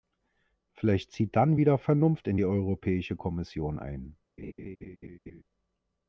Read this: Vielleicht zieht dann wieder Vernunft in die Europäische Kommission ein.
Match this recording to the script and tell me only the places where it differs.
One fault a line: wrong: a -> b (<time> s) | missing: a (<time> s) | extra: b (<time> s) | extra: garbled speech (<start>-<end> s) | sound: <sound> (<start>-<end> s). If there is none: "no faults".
sound: laugh (4.4-5.4 s)